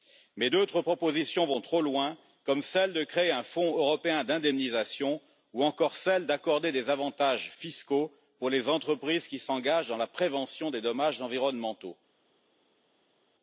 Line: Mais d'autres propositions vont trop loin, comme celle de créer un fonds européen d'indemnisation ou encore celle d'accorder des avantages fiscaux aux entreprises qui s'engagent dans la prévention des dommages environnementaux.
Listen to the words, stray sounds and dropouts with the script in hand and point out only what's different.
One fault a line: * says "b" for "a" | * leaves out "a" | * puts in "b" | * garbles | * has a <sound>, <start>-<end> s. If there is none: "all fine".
all fine